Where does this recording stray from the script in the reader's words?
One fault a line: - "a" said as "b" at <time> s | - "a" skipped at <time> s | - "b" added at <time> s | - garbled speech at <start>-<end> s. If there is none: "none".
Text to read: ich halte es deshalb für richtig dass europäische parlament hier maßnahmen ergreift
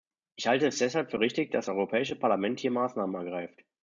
none